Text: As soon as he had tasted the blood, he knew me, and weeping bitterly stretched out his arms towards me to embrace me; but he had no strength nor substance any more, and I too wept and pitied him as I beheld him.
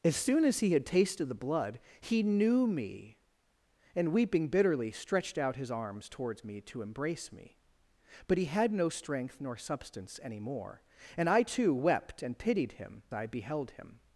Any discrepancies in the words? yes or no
yes